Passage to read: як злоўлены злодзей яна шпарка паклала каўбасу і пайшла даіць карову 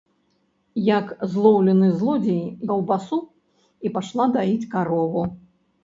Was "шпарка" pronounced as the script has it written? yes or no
no